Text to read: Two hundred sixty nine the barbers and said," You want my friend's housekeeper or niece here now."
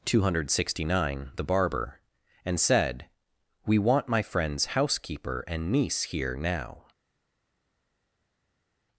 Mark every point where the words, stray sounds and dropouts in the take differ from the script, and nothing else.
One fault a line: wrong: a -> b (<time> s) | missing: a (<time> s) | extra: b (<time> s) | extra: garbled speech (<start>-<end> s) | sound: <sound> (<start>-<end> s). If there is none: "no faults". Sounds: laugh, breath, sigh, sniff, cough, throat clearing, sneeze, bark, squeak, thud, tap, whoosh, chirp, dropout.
wrong: barbers -> barber (1.4 s)
wrong: You -> We (3.7 s)
wrong: or -> and (5.5 s)